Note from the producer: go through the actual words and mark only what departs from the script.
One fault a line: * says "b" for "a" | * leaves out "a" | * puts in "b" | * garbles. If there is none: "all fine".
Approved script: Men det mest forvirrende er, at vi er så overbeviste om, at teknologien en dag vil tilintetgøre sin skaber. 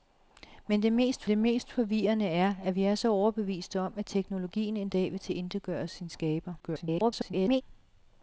* puts in "det mest"
* garbles